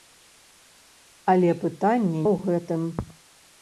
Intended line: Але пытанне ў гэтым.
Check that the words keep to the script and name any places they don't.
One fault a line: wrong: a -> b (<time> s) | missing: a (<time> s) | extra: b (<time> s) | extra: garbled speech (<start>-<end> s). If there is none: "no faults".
no faults